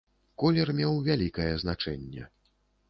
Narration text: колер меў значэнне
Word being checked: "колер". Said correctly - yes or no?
yes